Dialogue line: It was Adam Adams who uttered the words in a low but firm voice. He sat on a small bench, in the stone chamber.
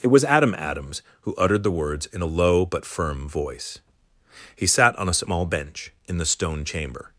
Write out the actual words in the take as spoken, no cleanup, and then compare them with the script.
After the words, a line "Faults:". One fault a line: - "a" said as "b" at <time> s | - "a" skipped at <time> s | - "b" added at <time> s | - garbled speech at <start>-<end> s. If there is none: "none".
It was Adam Adams who uttered the words in a low but firm voice. He sat on a small bench, in the stone chamber.
Faults:
none